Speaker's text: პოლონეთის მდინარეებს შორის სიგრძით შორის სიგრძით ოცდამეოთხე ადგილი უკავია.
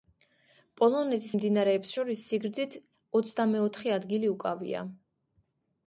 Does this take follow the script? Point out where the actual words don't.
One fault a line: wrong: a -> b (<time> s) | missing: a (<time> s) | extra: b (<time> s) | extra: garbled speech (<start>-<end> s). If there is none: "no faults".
missing: შორის სიგრძით (2.8 s)